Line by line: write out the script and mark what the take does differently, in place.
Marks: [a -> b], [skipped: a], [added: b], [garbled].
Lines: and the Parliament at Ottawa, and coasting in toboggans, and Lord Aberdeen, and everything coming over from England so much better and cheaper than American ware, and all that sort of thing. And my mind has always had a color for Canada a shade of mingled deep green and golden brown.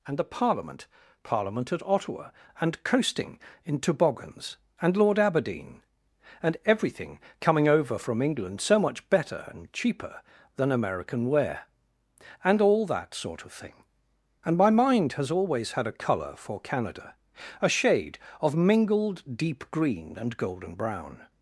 and the Parliament [added: Parliament] at Ottawa, and coasting in toboggans, and Lord Aberdeen, and everything coming over from England so much better and cheaper than American ware, and all that sort of thing. And my mind has always had a color for Canada a shade of mingled deep green and golden brown.